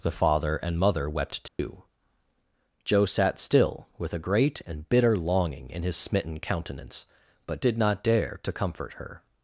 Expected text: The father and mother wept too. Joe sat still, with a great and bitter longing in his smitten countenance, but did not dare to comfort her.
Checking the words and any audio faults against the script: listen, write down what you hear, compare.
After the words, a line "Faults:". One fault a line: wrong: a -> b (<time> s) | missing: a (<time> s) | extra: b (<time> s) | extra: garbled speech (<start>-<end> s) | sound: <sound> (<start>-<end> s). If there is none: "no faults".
The father and mother wept too. Joe sat still, with a great and bitter longing in his smitten countenance, but did not dare to comfort her.
Faults:
sound: dropout (1.5-1.6 s)